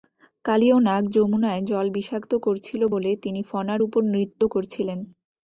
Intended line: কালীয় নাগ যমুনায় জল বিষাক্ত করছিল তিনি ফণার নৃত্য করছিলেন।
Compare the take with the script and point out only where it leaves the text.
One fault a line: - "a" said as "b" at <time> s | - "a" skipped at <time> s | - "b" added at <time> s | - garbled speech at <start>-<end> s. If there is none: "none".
- "বলে" added at 2.9 s
- "উপর" added at 3.8 s